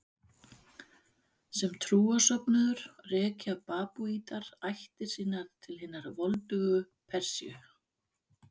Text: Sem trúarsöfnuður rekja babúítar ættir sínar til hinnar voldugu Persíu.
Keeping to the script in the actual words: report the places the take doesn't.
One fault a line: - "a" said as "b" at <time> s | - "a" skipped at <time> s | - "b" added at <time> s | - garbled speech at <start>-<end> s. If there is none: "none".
none